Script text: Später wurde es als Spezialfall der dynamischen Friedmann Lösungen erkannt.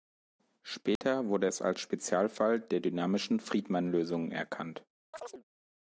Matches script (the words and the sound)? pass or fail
fail